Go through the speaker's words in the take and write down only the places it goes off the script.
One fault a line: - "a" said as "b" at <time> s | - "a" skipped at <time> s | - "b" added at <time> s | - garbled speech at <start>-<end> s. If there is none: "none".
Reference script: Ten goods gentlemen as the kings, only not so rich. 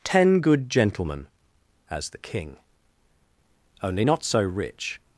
- "goods" said as "good" at 0.4 s
- "kings" said as "king" at 2.2 s